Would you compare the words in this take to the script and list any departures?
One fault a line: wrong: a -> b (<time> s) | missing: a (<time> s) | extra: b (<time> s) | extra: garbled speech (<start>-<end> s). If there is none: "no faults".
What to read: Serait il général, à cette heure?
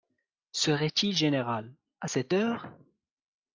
no faults